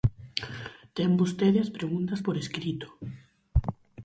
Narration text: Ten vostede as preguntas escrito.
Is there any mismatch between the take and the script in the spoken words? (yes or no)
yes